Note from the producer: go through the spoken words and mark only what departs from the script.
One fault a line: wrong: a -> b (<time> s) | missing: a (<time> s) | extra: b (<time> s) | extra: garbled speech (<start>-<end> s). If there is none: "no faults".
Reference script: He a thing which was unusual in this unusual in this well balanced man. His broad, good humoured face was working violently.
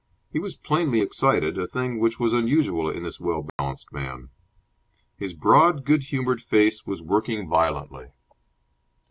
extra: was plainly excited (0.4 s)
missing: unusual in this (3.2 s)